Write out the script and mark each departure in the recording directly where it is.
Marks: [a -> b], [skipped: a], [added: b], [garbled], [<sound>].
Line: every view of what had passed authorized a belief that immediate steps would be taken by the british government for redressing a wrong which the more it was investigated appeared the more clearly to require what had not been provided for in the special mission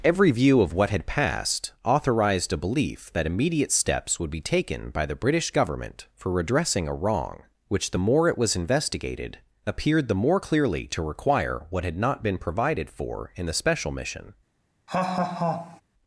every view of what had passed authorized a belief that immediate steps would be taken by the british government for redressing a wrong which the more it was investigated appeared the more clearly to require what had not been provided for in the special mission [laugh]